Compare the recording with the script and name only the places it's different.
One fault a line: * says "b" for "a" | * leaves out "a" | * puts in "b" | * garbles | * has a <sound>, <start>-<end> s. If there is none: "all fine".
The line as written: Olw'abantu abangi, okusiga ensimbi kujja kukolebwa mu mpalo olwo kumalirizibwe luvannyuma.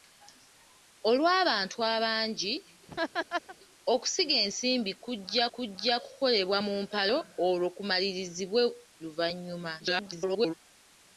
* has a laugh, 2.9-3.6 s
* puts in "kujja"
* garbles